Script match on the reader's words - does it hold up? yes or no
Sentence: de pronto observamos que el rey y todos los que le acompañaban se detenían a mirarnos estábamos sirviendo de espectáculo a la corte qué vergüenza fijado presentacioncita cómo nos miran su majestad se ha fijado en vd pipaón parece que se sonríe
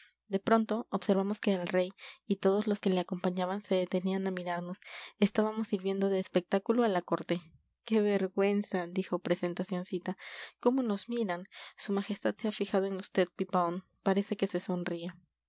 no